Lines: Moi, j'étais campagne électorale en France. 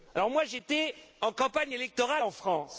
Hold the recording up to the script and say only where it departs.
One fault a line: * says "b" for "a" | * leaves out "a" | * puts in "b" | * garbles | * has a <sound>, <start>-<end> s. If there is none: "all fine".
* puts in "en"